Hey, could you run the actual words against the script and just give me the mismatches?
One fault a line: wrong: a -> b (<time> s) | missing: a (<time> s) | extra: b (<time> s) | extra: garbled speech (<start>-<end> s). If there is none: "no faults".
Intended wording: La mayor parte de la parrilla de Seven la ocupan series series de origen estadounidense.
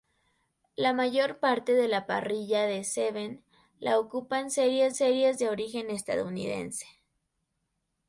no faults